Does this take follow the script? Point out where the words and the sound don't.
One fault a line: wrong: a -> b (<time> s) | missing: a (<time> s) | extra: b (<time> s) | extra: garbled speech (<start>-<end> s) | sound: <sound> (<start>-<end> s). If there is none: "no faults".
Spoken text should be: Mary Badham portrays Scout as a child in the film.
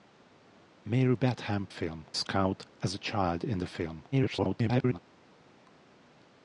wrong: portrays -> film (1.7 s)
extra: garbled speech (4.1-5.0 s)